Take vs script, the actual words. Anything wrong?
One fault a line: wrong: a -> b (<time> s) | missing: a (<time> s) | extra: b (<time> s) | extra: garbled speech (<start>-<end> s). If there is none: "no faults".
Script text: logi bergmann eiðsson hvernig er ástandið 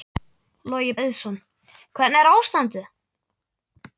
missing: bergmann (0.9 s)